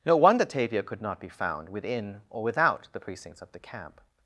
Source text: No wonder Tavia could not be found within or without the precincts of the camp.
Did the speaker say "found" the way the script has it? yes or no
yes